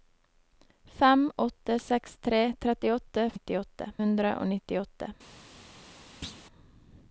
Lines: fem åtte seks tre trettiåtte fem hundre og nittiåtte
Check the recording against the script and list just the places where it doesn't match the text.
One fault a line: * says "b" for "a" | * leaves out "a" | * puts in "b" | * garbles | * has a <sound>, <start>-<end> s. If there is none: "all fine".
* says "nittiåtte" for "fem"
* has a thud, 6.2-6.4 s